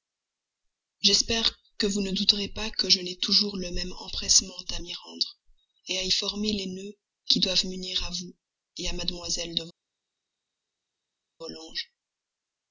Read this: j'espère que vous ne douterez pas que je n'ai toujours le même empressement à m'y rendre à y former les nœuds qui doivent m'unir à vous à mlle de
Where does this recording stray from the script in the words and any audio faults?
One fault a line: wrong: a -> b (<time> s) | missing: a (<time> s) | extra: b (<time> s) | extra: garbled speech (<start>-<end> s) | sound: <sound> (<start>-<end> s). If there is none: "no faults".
no faults